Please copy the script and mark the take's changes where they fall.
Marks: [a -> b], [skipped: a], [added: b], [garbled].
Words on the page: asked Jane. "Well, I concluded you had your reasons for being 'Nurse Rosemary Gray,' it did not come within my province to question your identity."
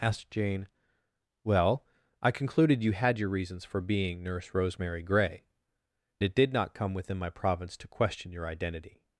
asked Jane. "Well, I concluded you had your reasons for being 'Nurse Rosemary Gray,' it did not come within my province to question your identity."